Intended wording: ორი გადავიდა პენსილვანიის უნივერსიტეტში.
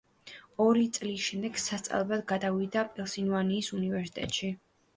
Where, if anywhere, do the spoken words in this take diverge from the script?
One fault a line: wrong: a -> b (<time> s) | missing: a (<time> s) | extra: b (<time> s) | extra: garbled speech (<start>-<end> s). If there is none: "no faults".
extra: წლის შემდეგ სასწავლებლად (1.0 s)